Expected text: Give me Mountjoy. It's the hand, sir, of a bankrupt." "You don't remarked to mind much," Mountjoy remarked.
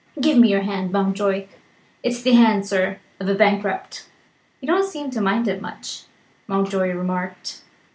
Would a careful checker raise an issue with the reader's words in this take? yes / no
yes